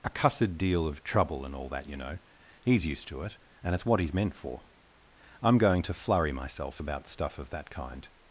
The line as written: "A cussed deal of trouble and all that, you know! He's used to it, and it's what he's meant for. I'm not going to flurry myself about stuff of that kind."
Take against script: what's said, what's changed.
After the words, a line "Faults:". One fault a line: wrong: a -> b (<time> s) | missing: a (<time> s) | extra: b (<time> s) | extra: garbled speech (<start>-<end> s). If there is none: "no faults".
"A cussed deal of trouble and all that, you know! He's used to it, and it's what he's meant for. I'm going to flurry myself about stuff of that kind."
Faults:
missing: not (5.6 s)